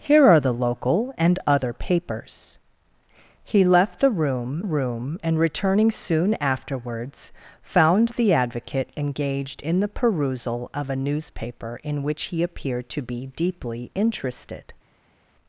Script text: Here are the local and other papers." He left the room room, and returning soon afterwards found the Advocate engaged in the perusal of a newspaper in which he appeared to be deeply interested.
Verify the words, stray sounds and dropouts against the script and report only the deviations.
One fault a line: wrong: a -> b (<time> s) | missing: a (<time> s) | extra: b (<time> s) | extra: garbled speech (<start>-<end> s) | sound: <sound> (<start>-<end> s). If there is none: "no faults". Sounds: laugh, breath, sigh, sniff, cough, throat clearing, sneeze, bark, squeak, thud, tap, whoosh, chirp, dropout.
no faults